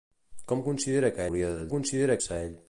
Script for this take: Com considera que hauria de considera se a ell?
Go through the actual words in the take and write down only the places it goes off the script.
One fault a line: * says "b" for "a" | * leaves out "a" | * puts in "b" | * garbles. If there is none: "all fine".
all fine